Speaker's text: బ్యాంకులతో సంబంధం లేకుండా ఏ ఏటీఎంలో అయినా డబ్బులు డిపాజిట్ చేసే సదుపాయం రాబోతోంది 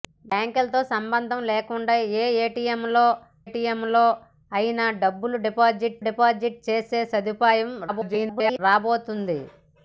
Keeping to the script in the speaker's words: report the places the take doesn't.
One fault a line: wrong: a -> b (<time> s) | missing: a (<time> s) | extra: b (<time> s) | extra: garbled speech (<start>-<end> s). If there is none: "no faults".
extra: ఏటీఎంలో (3.4 s)
extra: డిపాజిట్ (6.1 s)
extra: garbled speech (7.9-8.6 s)